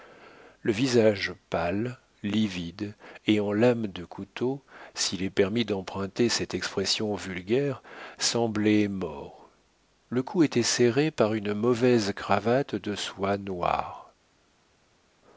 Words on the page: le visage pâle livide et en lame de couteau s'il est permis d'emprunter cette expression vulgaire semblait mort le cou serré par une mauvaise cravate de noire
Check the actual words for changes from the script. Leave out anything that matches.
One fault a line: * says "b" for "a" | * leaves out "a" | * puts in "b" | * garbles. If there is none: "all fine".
* puts in "était"
* puts in "soie"